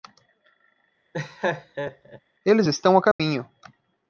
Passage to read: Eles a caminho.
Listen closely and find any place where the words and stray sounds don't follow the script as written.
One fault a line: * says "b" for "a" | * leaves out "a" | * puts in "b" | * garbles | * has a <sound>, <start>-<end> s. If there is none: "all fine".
* has a laugh, 1.1-2.2 s
* puts in "estão"
* has a dropout, 3.1-3.2 s